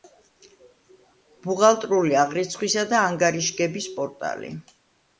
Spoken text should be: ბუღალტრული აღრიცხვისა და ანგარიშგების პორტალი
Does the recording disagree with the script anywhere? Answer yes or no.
no